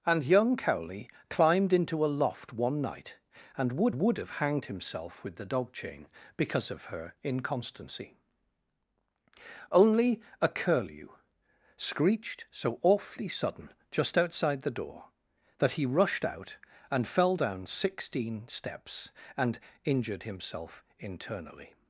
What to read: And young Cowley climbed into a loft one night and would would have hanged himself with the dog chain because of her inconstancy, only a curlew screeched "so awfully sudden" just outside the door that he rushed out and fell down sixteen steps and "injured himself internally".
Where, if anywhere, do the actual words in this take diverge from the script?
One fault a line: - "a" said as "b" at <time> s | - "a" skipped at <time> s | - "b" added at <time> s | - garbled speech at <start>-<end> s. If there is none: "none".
none